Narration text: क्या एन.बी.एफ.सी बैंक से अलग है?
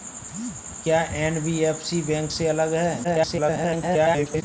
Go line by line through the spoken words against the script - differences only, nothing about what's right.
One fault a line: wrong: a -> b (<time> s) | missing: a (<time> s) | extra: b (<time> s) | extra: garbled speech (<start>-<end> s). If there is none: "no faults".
extra: garbled speech (3.0-4.4 s)